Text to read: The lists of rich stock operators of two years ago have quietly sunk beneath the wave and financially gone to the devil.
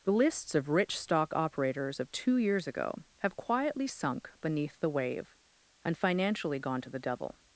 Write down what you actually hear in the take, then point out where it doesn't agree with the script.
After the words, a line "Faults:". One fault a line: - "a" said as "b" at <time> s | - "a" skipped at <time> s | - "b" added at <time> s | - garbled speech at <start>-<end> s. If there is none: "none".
The lists of rich stock operators of two years ago have quietly sunk beneath the wave and financially gone to the devil.
Faults:
none